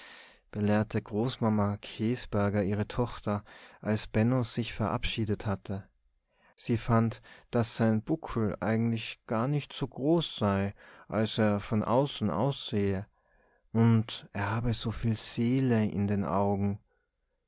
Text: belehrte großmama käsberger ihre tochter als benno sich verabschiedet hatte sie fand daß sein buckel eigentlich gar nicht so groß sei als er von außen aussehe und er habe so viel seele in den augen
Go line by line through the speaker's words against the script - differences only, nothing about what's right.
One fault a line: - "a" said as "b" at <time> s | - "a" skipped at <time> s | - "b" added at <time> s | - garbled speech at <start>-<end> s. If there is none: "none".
none